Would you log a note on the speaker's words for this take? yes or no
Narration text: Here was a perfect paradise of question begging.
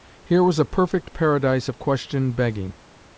no